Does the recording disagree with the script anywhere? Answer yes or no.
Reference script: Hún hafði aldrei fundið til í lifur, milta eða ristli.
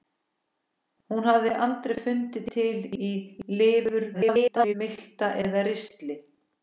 yes